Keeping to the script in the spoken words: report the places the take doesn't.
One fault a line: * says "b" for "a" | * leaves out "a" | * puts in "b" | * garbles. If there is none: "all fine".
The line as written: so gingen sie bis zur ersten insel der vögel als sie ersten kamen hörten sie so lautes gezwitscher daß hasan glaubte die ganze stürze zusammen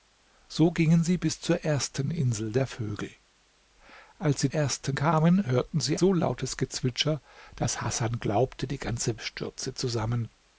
all fine